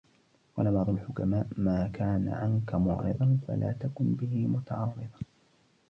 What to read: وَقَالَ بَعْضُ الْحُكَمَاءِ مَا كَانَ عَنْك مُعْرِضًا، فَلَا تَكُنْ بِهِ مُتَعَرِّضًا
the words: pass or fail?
pass